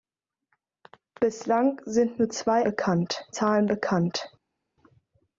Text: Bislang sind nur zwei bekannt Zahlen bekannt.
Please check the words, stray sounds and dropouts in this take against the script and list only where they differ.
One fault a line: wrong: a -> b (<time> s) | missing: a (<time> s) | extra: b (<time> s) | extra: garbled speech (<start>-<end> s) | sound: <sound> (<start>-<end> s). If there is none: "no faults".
no faults